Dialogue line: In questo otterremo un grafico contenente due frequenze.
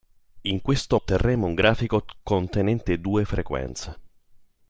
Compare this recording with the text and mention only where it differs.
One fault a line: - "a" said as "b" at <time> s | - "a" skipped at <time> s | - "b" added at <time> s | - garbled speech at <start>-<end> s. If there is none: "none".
none